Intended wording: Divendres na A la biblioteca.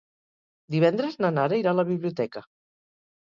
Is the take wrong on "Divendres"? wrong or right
right